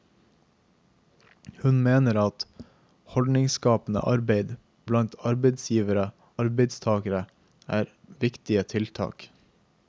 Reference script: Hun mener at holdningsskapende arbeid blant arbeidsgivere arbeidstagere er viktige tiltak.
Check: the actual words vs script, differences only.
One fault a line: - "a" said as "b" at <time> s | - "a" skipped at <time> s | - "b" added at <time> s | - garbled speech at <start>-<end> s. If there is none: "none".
none